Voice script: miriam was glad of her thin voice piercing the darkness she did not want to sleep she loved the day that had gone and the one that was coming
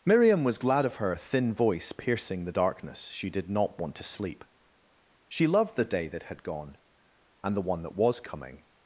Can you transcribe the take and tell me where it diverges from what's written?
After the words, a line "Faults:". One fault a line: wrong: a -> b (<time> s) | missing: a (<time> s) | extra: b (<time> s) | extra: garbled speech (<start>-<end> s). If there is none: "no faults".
miriam was glad of her thin voice piercing the darkness she did not want to sleep she loved the day that had gone and the one that was coming
Faults:
no faults